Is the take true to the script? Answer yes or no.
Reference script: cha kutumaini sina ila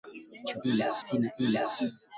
no